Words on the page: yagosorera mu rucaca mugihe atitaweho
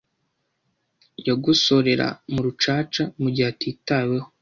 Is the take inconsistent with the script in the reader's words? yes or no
no